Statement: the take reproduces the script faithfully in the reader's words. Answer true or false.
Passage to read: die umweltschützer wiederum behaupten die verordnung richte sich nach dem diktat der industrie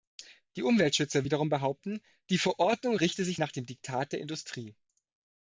true